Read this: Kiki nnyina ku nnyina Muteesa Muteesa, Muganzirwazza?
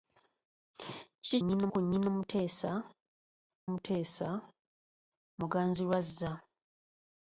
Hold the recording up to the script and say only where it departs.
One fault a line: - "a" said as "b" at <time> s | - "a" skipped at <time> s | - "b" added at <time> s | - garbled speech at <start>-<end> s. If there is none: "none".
none